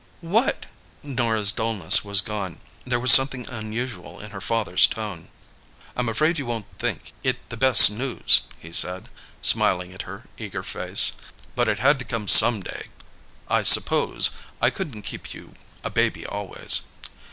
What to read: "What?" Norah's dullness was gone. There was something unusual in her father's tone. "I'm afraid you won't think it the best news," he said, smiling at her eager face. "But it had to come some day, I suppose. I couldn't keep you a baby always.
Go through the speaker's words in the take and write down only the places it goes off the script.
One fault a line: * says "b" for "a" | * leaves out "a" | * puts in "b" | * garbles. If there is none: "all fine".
all fine